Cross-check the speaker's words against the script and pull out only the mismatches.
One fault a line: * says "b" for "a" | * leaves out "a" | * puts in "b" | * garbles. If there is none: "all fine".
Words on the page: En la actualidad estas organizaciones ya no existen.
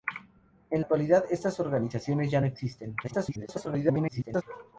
* leaves out "la"
* garbles